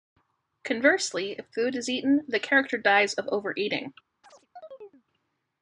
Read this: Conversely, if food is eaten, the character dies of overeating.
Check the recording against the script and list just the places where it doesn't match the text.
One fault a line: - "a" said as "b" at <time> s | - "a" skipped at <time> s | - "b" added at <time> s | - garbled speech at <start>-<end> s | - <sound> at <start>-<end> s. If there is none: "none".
- chirp at 4.2-5.0 s